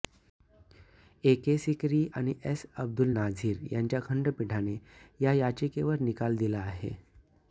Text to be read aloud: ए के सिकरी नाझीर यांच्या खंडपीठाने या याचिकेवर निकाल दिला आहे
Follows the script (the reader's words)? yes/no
no